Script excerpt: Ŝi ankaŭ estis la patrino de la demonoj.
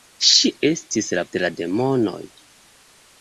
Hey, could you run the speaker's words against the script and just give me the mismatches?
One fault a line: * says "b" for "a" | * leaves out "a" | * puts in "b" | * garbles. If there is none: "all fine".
* leaves out "ankaŭ"
* leaves out "patrino"